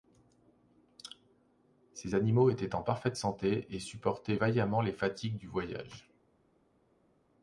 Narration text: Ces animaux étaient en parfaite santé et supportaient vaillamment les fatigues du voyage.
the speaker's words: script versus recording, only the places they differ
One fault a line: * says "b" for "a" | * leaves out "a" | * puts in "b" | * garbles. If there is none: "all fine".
all fine